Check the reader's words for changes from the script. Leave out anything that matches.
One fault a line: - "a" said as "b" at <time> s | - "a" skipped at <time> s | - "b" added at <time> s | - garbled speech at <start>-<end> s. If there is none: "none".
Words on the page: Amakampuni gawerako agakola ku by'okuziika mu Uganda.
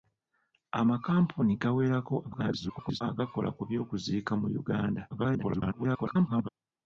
- garbled speech at 2.2-3.0 s
- garbled speech at 5.1-6.5 s